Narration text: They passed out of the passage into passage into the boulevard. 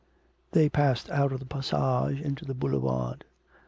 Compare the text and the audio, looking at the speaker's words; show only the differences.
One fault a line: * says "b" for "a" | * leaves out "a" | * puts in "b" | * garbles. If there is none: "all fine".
* leaves out "passage into"